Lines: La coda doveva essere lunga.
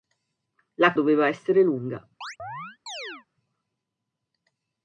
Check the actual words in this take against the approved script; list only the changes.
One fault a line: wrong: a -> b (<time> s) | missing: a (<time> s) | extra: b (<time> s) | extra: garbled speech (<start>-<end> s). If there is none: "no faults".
missing: coda (0.9 s)